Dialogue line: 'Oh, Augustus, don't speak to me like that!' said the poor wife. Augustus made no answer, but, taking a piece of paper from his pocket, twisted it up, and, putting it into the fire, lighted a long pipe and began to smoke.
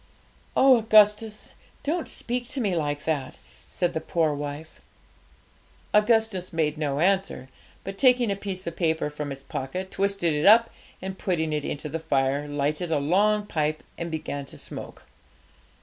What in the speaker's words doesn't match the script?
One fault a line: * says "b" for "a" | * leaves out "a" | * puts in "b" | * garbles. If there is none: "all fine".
all fine